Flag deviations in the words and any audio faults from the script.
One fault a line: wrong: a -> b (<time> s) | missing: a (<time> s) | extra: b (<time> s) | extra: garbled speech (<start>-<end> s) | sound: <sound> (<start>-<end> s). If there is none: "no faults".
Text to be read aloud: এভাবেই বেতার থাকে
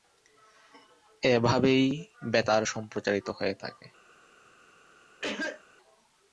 extra: সম্প্রচারিত হয়ে (2.6 s)
sound: cough (5.2-5.6 s)